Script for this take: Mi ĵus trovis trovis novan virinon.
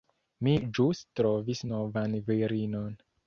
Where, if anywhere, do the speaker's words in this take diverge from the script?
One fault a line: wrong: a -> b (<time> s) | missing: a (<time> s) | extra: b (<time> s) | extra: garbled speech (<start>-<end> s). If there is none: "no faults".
missing: trovis (1.6 s)